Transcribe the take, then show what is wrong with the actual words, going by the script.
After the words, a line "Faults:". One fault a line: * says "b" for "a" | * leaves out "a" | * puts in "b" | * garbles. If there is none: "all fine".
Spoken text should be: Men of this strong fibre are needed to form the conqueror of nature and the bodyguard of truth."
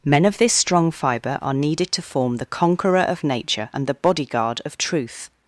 Men of this strong fibre are needed to form the conqueror of nature and the bodyguard of truth."
Faults:
all fine